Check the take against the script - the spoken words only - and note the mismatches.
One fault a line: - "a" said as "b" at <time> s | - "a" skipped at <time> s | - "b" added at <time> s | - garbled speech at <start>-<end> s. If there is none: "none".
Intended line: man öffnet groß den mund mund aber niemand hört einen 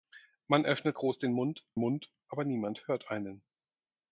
none